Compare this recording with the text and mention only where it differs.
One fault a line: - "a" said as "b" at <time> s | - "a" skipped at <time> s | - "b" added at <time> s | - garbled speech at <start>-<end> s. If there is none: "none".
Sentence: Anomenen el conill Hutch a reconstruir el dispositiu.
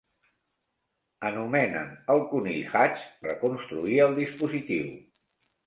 none